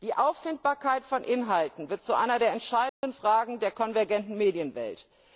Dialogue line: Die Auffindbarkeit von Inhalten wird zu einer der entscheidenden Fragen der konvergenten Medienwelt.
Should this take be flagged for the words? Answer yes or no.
no